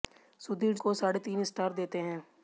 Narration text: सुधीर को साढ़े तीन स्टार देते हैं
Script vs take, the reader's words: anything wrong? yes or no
no